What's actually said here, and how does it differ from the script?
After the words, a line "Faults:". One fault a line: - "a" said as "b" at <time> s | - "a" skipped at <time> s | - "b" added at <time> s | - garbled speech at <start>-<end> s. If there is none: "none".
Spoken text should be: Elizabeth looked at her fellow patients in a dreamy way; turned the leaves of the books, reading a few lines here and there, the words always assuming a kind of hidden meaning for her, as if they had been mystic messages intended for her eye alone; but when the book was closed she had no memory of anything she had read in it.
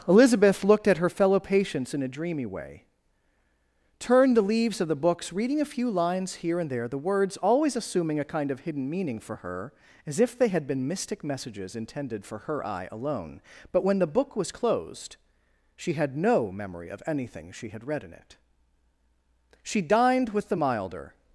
Elizabeth looked at her fellow patients in a dreamy way; turned the leaves of the books, reading a few lines here and there, the words always assuming a kind of hidden meaning for her, as if they had been mystic messages intended for her eye alone; but when the book was closed she had no memory of anything she had read in it. She dined with the milder
Faults:
- "She dined with the milder" added at 19.6 s